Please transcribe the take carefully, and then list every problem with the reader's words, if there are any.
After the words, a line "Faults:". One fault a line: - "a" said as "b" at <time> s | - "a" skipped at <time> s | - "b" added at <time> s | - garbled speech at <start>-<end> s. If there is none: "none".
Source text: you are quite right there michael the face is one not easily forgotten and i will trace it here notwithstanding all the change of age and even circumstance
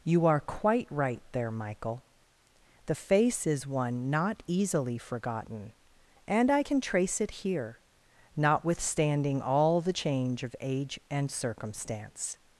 you are quite right there michael the face is one not easily forgotten and i can trace it here notwithstanding all the change of age and circumstance
Faults:
- "will" said as "can" at 6.6 s
- "even" skipped at 11.3 s